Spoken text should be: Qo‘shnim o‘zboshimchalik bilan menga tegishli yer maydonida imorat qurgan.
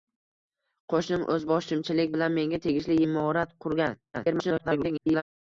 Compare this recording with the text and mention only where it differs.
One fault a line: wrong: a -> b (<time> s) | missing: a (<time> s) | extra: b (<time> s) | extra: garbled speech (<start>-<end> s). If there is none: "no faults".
missing: yer maydonida (3.0 s)
extra: garbled speech (4.1-5.2 s)